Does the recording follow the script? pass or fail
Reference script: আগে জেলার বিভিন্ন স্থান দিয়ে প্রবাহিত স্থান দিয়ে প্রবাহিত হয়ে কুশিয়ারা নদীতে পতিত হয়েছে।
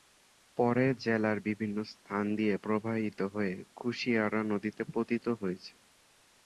fail